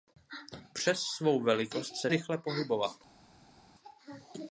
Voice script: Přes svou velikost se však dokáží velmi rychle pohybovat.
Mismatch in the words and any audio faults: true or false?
true